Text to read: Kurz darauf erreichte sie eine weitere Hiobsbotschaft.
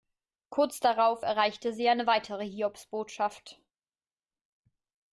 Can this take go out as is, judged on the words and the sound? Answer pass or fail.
pass